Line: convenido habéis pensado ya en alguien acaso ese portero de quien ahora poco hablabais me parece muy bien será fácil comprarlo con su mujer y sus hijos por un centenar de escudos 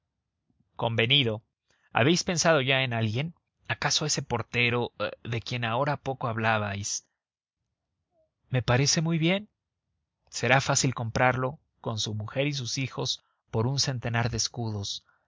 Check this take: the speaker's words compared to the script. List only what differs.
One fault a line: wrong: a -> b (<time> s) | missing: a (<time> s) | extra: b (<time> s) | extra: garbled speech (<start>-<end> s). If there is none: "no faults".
no faults